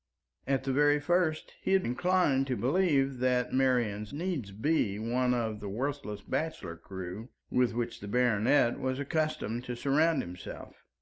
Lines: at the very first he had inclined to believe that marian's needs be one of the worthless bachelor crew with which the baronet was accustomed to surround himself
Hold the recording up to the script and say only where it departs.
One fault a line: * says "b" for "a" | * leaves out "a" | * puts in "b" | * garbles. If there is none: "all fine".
all fine